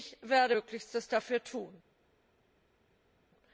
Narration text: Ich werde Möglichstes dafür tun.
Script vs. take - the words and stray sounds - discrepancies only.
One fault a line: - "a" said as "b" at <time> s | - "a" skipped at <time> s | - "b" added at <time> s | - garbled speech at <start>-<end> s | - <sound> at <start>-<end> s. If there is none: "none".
none